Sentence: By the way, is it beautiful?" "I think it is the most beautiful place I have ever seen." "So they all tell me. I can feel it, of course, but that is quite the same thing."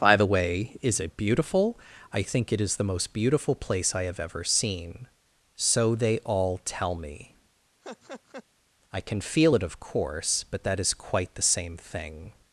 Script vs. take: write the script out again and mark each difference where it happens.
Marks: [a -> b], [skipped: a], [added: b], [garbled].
By the way, is it beautiful?" "I think it is the most beautiful place I have ever seen." "So they all tell me. I can feel it, of course, but that is quite the same thing."